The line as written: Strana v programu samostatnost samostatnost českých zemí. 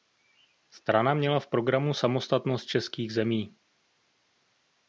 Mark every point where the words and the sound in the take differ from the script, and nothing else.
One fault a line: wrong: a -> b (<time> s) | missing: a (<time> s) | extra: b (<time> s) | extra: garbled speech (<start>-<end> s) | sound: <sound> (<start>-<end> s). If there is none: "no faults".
extra: měla (1.1 s)
missing: samostatnost (2.6 s)